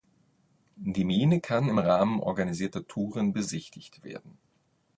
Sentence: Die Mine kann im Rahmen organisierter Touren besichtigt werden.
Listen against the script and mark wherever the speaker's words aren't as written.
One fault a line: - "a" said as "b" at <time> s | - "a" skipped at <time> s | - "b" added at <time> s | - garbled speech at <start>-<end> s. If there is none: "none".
none